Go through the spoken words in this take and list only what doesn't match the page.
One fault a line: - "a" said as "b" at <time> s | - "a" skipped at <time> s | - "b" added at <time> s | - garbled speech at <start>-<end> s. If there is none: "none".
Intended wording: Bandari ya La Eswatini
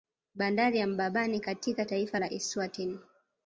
- "Mbabane katika taifa" added at 0.9 s